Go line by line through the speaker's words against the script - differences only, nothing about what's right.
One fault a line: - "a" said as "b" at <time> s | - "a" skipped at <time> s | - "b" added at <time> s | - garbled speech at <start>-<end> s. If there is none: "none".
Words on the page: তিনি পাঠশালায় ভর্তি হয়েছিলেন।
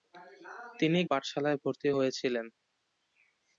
none